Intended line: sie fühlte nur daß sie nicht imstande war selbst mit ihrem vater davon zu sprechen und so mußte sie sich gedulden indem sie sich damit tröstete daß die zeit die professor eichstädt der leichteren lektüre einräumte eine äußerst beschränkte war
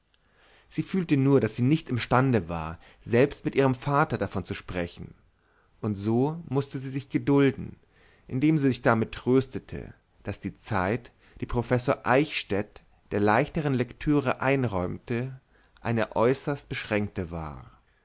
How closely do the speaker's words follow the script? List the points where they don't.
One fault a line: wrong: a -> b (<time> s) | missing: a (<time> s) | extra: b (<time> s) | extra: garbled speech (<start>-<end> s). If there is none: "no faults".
no faults